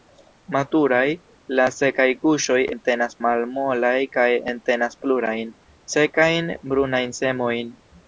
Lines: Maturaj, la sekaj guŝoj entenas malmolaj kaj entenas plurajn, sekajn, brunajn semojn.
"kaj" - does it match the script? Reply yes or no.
yes